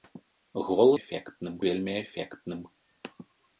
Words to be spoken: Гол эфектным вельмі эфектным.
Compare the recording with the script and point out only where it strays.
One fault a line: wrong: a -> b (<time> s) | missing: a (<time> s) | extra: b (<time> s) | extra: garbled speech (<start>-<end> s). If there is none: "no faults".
no faults